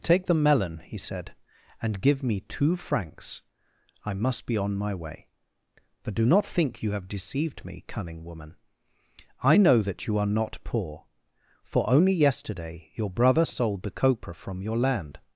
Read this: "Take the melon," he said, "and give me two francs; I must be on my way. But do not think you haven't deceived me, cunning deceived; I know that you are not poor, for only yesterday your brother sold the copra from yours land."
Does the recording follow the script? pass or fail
fail